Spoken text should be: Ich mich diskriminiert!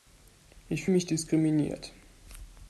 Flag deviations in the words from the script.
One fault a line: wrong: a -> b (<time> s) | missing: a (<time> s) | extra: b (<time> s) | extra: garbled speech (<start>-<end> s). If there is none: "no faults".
no faults